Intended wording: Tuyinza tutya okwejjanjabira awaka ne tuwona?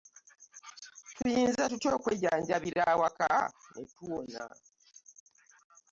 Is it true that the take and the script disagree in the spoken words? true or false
false